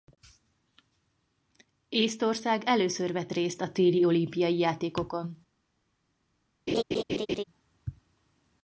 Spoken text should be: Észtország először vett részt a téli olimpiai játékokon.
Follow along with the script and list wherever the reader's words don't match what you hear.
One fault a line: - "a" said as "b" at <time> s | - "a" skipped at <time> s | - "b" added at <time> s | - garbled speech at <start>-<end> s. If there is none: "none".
none